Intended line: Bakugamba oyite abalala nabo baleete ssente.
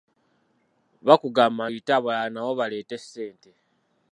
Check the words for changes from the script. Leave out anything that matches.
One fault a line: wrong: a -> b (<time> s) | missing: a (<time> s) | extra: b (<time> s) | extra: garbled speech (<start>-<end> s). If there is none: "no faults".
no faults